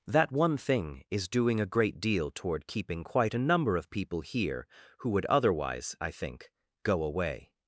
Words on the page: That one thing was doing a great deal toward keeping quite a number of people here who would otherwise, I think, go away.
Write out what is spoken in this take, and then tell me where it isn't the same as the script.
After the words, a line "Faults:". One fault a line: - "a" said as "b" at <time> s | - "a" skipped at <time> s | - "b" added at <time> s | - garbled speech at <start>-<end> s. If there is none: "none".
That one thing is doing a great deal toward keeping quite a number of people here who would otherwise, I think, go away.
Faults:
- "was" said as "is" at 1.1 s